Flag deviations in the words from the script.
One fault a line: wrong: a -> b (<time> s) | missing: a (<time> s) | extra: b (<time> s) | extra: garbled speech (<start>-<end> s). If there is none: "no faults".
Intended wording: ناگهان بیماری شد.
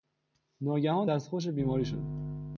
extra: دستخوش (1.0 s)